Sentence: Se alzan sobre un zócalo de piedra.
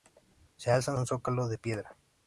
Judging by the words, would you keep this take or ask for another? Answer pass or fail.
fail